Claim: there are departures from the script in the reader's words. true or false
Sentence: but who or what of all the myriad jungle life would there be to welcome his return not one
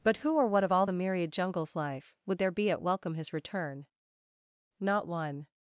true